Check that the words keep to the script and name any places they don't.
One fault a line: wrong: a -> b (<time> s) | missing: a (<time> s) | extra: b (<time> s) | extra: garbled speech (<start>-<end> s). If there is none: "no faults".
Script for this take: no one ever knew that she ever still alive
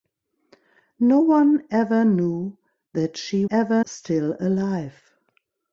no faults